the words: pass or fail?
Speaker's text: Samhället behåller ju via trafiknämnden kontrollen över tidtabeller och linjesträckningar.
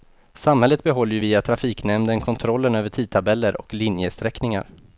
pass